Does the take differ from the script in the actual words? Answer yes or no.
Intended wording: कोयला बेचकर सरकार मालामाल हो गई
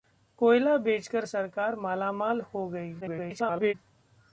yes